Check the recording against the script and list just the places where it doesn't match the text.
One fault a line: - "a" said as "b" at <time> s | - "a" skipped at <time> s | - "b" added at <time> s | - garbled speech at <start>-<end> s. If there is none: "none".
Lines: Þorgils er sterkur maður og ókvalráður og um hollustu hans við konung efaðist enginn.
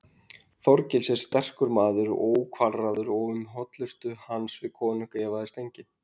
none